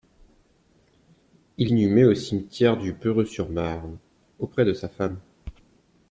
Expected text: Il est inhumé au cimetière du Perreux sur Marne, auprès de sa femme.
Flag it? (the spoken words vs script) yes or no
yes